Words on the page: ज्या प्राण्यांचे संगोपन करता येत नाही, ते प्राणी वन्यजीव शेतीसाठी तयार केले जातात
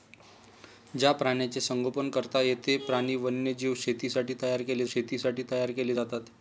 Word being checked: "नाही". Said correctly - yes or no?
no